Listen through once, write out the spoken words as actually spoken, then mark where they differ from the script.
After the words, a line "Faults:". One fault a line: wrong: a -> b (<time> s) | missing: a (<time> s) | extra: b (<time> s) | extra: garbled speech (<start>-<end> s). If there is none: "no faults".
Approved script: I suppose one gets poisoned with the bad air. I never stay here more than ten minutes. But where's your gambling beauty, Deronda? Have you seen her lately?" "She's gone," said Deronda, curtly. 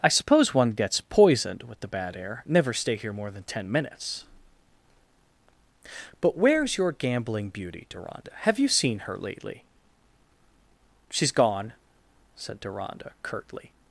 I suppose one gets poisoned with the bad air. never stay here more than ten minutes. But where's your gambling beauty, Deronda? Have you seen her lately?" "She's gone," said Deronda, curtly.
Faults:
missing: I (2.4 s)